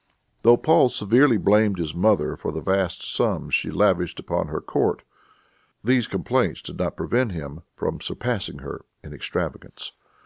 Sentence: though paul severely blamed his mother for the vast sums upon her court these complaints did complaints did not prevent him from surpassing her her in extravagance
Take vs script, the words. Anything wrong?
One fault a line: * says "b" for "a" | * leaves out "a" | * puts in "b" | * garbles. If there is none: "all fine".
* puts in "she lavished"
* leaves out "complaints did"
* leaves out "her"